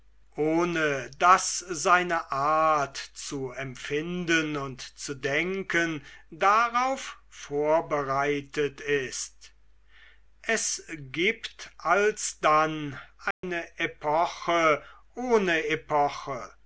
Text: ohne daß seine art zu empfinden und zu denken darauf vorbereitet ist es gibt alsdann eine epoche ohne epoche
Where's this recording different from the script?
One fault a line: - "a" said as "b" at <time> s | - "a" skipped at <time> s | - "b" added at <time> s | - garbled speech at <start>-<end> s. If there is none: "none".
none